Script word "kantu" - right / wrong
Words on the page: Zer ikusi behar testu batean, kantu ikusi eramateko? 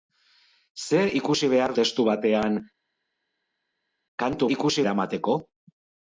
right